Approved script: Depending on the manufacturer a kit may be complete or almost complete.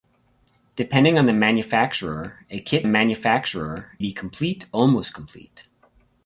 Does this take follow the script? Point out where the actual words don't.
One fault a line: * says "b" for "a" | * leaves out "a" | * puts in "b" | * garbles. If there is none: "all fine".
* says "manufacturer" for "may"
* leaves out "or"